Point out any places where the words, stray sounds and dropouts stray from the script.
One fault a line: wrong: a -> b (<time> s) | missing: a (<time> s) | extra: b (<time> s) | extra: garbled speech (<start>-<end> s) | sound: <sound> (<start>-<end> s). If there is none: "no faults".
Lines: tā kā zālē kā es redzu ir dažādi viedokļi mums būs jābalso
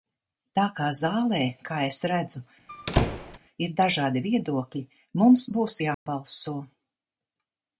sound: squeak (2.7-3.4 s)
sound: dropout (5.9-6.1 s)